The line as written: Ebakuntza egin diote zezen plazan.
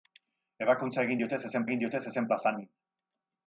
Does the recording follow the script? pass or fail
fail